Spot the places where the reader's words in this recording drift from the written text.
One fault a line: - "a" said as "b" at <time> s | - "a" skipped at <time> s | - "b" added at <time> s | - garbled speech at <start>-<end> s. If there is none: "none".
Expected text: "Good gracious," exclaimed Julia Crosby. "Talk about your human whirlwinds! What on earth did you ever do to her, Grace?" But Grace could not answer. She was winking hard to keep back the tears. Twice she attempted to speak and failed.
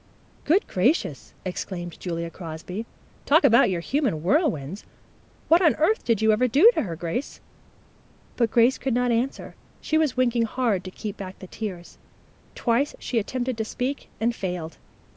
none